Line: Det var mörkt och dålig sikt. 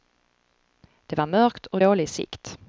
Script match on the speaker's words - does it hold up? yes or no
yes